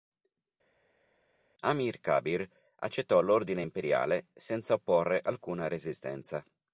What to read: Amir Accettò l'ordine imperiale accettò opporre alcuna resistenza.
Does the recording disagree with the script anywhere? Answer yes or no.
yes